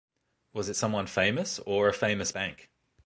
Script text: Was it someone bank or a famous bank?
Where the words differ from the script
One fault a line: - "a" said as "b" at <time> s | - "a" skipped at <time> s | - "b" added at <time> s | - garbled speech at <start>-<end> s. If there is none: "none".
- "bank" said as "famous" at 1.1 s